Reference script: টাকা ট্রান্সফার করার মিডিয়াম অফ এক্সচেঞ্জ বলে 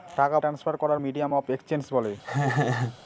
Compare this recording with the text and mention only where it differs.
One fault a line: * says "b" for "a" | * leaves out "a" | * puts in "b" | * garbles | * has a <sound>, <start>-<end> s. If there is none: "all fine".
* has a laugh, 2.2-3.0 s